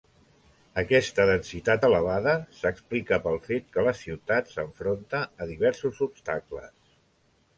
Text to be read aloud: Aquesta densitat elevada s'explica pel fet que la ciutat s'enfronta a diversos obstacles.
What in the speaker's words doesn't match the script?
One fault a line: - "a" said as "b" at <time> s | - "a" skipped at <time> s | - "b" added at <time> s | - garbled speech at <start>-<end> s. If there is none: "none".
none